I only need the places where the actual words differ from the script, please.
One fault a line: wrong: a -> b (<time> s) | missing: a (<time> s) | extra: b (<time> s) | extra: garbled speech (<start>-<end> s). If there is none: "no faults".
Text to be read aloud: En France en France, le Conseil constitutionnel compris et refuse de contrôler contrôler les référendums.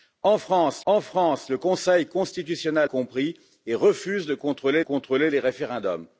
no faults